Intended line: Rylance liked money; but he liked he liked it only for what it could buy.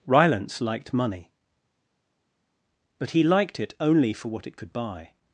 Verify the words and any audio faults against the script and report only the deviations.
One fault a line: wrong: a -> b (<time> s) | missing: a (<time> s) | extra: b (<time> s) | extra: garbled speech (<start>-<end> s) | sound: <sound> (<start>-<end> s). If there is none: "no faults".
missing: he liked (3.6 s)